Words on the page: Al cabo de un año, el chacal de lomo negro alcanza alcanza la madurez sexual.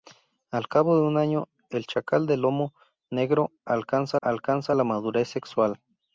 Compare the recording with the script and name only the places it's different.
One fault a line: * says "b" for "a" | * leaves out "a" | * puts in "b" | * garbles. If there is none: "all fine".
all fine